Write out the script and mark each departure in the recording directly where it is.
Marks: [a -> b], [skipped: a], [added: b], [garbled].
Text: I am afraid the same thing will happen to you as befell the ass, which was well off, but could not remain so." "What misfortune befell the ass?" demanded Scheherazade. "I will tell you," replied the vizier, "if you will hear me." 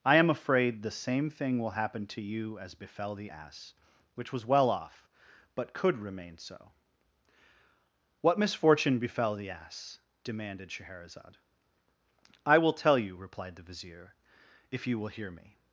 I am afraid the same thing will happen to you as befell the ass, which was well off, but could [skipped: not] remain so." "What misfortune befell the ass?" demanded Scheherazade. "I will tell you," replied the vizier, "if you will hear me."